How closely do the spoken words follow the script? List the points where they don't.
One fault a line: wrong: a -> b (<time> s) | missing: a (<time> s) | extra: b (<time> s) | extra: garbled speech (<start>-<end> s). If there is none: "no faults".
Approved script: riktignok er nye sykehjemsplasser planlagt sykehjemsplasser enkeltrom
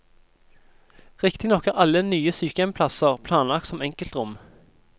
extra: alle (1.8 s)
wrong: sykehjemsplasser -> som (3.7 s)